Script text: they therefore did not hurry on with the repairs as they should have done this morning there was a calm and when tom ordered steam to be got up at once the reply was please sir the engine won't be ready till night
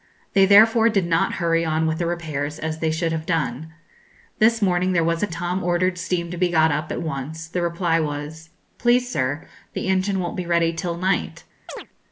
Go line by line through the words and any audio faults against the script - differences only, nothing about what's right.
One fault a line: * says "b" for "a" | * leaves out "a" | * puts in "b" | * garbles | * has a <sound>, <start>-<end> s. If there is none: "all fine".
* leaves out "calm and when"
* has a chirp, 11.7-11.9 s